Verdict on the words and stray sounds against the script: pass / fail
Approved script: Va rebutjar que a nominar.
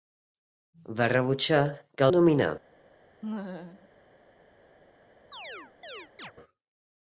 fail